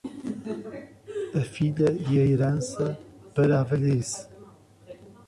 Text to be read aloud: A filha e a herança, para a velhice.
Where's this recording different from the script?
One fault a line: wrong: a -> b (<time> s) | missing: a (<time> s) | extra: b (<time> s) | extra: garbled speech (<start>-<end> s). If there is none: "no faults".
no faults